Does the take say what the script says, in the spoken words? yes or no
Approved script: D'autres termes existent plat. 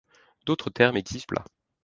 yes